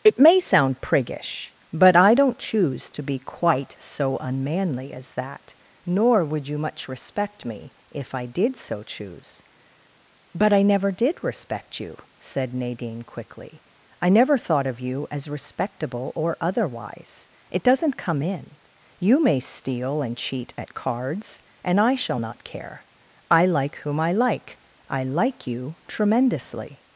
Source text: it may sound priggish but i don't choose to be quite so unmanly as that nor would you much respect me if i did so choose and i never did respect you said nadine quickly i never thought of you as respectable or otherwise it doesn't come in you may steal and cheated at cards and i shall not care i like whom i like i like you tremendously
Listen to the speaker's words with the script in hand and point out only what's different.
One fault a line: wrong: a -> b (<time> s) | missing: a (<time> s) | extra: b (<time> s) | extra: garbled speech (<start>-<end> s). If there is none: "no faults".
wrong: and -> but (10.3 s)
wrong: cheated -> cheat (20.1 s)